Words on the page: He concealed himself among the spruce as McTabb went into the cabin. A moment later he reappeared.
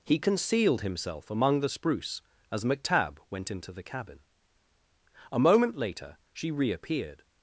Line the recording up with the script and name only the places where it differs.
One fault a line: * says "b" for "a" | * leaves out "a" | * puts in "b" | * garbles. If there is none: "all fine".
* says "she" for "he"